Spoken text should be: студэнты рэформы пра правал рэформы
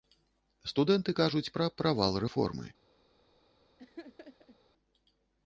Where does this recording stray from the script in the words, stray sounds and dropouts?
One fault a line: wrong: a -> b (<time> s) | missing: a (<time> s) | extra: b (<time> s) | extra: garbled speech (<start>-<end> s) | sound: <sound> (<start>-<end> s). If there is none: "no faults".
wrong: рэформы -> кажуць (1.2 s)
sound: laugh (3.8-4.6 s)